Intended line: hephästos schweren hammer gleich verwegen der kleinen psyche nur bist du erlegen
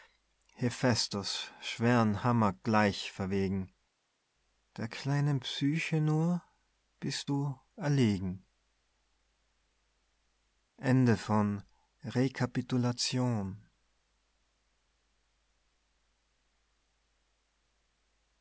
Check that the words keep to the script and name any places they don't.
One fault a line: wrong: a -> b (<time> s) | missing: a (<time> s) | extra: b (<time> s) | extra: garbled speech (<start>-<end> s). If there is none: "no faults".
no faults